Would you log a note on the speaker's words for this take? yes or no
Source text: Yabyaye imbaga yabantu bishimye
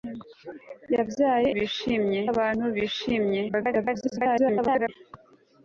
yes